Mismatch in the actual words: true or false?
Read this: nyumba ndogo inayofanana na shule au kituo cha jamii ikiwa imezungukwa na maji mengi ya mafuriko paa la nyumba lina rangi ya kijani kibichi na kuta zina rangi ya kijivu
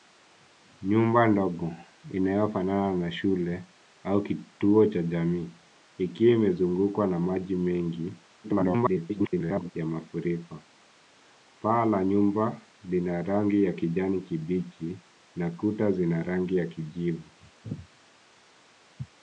true